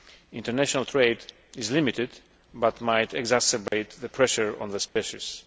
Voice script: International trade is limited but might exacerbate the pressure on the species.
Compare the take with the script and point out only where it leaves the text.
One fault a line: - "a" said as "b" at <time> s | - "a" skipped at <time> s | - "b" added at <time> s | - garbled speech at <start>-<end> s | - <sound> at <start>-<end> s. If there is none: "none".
- dropout at 3.7-3.7 s
- dropout at 4.9-5.0 s